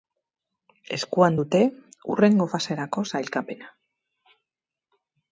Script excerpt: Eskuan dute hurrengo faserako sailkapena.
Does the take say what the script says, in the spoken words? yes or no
yes